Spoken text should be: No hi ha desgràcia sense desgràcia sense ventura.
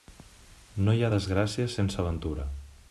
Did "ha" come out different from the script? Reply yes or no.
no